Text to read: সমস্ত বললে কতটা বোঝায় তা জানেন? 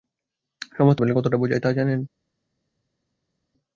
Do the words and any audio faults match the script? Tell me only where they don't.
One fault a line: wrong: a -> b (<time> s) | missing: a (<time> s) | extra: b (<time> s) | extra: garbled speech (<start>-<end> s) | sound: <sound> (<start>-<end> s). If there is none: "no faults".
no faults